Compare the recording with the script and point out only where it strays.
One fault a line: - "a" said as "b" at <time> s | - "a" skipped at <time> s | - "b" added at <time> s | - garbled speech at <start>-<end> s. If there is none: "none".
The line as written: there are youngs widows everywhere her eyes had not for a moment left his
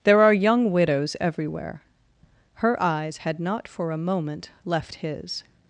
- "youngs" said as "young" at 0.3 s